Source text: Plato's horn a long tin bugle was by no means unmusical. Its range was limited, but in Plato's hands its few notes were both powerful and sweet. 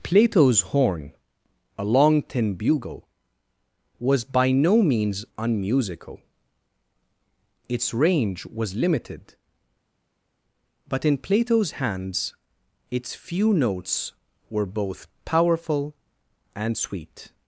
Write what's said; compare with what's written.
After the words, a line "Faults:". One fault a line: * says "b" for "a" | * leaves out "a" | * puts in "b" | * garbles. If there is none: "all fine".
Plato's horn a long tin bugle was by no means unmusical. Its range was limited, but in Plato's hands its few notes were both powerful and sweet.
Faults:
all fine